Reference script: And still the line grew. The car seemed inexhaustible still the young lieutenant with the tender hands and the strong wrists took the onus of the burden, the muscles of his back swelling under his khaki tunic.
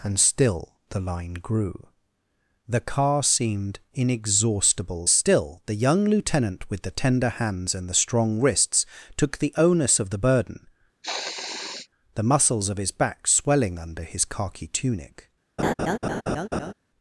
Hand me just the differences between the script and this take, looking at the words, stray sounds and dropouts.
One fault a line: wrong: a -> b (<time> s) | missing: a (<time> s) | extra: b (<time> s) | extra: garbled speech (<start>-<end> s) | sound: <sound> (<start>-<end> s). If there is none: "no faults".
sound: sniff (11.0-11.9 s)
sound: laugh (15.6-16.7 s)